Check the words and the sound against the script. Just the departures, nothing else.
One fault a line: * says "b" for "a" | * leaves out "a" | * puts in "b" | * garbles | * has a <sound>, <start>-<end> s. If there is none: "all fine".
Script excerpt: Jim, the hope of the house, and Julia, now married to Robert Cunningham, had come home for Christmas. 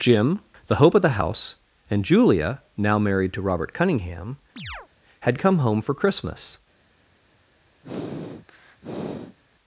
* has a chirp, 4.6-4.9 s
* has a sniff, 7.8-9.4 s